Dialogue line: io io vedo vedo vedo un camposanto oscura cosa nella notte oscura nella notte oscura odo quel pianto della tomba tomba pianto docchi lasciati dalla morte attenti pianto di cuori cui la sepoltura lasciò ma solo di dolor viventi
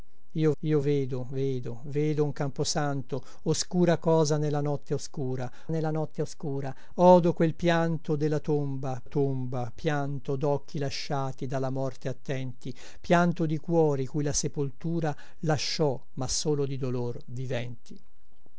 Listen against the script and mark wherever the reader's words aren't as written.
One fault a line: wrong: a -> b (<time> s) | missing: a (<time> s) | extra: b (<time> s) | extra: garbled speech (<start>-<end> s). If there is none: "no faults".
no faults